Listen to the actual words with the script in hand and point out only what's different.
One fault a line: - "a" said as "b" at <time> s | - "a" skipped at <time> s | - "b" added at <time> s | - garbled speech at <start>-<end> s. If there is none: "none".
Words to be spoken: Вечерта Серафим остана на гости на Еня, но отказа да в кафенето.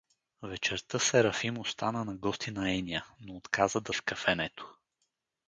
none